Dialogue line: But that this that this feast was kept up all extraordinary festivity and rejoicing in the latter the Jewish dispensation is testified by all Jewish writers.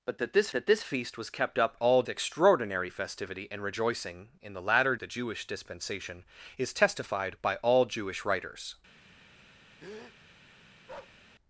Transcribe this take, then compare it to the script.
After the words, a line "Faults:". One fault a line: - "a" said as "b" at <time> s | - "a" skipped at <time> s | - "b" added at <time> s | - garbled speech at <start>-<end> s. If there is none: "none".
But that this that this feast was kept up all extraordinary festivity and rejoicing in the latter the Jewish dispensation is testified by all Jewish writers.
Faults:
none